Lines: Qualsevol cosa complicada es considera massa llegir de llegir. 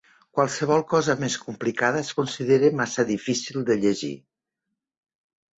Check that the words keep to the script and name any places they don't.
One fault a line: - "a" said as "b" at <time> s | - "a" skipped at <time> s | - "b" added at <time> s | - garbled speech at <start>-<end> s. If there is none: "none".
- "més" added at 1.2 s
- "llegir" said as "difícil" at 3.1 s